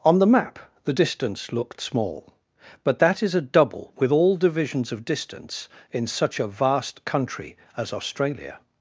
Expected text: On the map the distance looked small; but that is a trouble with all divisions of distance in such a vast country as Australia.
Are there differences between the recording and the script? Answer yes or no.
yes